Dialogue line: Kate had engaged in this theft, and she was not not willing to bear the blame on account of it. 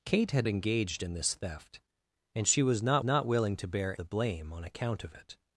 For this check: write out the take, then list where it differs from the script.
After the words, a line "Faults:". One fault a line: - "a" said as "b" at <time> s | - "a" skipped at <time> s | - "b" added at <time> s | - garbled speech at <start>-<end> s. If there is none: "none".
Kate had engaged in this theft, and she was not not willing to bear the blame on account of it.
Faults:
none